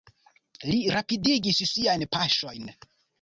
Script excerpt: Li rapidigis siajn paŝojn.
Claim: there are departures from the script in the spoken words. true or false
false